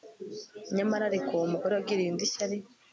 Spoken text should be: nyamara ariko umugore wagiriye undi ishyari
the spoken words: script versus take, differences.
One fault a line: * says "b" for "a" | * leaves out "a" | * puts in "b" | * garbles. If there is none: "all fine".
all fine